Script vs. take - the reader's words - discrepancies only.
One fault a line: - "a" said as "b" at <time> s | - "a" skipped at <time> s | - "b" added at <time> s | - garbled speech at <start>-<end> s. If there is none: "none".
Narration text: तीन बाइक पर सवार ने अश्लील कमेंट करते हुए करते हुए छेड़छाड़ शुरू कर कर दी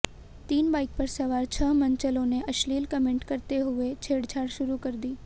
- "छह मनचलों" added at 1.4 s
- "करते हुए" skipped at 3.9 s
- "कर" skipped at 5.0 s